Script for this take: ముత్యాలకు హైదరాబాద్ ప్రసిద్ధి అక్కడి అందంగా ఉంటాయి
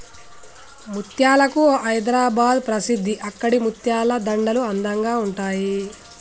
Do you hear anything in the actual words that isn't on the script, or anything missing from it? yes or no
yes